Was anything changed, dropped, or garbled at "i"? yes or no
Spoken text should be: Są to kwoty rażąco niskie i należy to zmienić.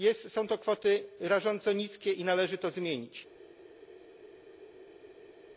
no